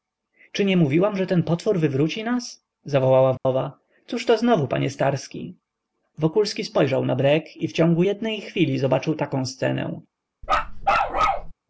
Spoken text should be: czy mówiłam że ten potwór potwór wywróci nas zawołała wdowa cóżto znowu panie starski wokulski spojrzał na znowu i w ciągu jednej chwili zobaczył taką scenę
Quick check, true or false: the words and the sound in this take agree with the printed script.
false